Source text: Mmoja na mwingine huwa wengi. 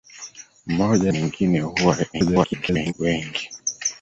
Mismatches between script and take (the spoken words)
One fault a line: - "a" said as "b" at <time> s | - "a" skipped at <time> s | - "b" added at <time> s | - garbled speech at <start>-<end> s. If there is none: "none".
- "na" skipped at 1.1 s
- garbled speech at 2.1-2.9 s